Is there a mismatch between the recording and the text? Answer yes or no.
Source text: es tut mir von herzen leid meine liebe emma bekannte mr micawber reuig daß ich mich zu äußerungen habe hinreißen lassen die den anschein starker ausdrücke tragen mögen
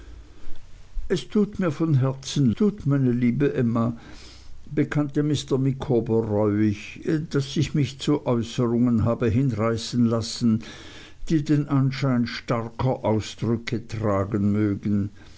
yes